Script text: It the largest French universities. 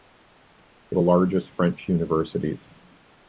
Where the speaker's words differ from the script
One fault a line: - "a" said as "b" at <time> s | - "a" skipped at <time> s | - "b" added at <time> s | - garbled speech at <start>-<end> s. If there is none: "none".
none